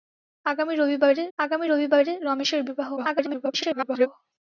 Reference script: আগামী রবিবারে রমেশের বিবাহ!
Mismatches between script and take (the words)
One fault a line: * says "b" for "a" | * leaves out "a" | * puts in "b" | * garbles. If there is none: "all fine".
* puts in "আগামী রবিবারে"
* garbles